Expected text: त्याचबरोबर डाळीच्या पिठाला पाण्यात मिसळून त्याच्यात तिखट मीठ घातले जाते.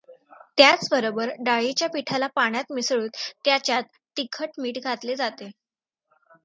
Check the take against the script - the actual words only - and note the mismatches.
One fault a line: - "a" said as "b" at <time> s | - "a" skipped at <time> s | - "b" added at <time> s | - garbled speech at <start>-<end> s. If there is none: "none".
none